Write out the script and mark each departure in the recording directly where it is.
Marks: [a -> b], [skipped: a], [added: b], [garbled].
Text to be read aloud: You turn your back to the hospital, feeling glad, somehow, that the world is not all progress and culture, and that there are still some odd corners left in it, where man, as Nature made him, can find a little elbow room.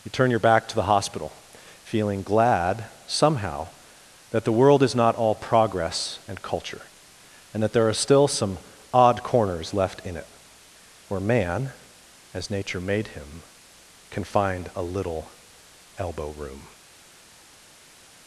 You turn your back to the hospital, feeling glad, somehow, that the world is not all progress and culture, and that there are still some odd corners left in it, where man, as Nature made him, can find a little elbow room.